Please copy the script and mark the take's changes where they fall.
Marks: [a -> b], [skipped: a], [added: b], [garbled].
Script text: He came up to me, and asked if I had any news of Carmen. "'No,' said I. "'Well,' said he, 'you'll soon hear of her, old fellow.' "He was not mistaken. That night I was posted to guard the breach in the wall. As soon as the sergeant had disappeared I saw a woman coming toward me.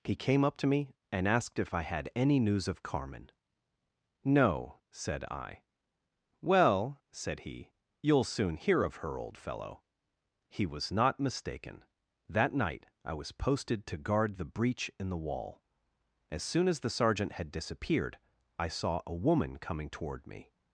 He came up to me, and asked if I had any news of Carmen. "'No,' said I. "'Well,' said he, 'you'll soon hear of her, old fellow.' "He was not mistaken. That night I was posted to guard the breach in the wall. As soon as the sergeant had disappeared I saw a woman coming toward me.